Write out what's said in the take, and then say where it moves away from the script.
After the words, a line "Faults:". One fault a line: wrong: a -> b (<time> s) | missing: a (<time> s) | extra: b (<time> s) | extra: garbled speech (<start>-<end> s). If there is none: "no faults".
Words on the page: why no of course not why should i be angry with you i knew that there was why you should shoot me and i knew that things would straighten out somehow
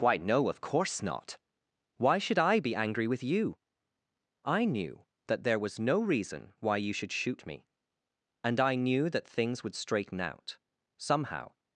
why no of course not why should i be angry with you i knew that there was no reason why you should shoot me and i knew that things would straighten out somehow
Faults:
extra: no reason (5.8 s)